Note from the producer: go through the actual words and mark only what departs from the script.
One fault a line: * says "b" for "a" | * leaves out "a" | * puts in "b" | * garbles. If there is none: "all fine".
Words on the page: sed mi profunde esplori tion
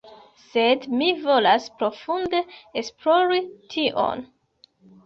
* puts in "volas"